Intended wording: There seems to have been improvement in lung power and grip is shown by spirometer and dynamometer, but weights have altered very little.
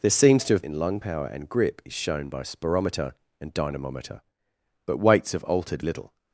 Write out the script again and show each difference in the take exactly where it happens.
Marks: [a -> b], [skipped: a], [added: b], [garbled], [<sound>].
There seems to have [skipped: been improvement] in lung power and grip is shown by spirometer and dynamometer, but weights have altered [skipped: very] little.